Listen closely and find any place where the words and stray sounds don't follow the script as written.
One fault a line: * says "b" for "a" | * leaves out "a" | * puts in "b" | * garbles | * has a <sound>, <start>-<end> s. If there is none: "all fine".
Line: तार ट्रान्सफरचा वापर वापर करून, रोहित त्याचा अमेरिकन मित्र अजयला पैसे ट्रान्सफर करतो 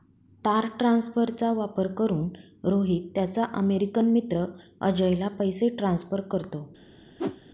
* leaves out "वापर"
* has a whoosh, 7.2-7.4 s